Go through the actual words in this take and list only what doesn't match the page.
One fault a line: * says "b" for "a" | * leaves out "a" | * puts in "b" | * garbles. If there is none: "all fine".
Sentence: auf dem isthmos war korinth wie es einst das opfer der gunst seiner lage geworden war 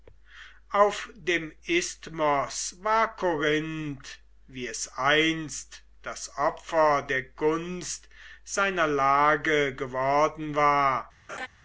all fine